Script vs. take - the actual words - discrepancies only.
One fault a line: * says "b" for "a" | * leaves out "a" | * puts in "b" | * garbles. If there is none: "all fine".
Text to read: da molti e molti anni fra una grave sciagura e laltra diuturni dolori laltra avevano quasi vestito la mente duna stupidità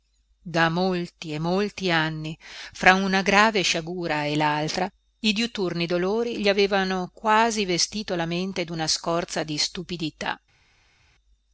* puts in "i"
* says "gli" for "laltra"
* puts in "scorza di"